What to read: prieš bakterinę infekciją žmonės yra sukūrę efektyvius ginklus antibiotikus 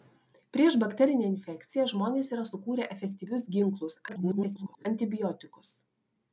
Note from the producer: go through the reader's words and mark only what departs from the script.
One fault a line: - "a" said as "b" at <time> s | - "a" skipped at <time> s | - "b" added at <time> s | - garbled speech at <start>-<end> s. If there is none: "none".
- garbled speech at 4.1-4.9 s